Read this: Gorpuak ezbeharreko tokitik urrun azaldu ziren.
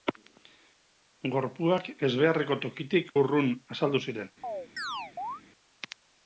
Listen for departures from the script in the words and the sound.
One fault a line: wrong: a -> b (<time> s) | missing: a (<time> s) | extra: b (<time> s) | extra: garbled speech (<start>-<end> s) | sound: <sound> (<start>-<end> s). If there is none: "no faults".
sound: chirp (4.4-5.4 s)